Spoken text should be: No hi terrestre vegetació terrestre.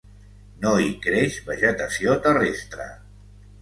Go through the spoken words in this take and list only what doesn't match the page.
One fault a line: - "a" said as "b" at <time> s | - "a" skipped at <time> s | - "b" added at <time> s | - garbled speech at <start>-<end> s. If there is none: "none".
- "terrestre" said as "creix" at 1.1 s